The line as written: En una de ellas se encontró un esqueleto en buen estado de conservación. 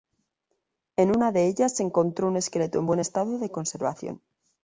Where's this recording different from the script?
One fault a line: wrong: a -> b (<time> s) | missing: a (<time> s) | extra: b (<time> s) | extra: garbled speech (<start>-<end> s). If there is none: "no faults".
no faults